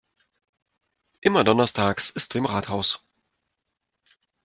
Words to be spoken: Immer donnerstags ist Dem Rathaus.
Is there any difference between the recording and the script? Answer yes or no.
no